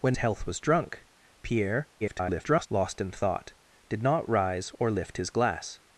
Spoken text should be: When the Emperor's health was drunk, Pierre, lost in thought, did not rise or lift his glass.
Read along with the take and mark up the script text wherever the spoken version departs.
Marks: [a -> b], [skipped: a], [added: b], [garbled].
When [skipped: the Emperor's] health was drunk, Pierre, [garbled] lost in thought, did not rise or lift his glass.